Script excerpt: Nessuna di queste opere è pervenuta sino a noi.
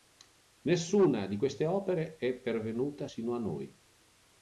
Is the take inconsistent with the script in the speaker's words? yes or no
no